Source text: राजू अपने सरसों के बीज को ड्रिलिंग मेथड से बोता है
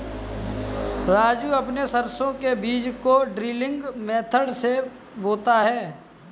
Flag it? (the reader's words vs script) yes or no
no